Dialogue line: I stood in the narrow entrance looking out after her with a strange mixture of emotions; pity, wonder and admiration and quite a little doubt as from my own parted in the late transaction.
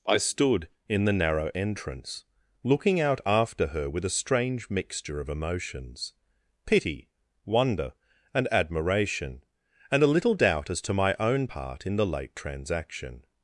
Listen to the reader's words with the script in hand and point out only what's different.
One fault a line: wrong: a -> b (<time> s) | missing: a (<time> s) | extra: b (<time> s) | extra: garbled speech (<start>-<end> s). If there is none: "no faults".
missing: quite (10.0 s)
wrong: from -> to (10.8 s)
wrong: parted -> part (11.4 s)